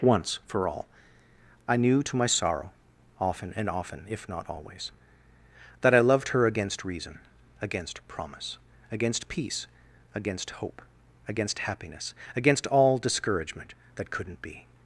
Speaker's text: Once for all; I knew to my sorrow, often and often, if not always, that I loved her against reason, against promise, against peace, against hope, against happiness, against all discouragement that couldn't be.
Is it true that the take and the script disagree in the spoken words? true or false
false